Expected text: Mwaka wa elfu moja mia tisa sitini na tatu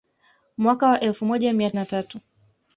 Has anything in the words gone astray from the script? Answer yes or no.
yes